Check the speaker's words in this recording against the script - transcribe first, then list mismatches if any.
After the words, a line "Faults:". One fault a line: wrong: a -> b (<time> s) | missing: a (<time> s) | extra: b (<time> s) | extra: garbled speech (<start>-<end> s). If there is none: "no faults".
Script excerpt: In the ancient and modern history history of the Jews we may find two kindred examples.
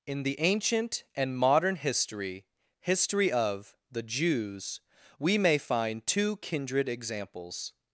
In the ancient and modern history history of the Jews we may find two kindred examples.
Faults:
no faults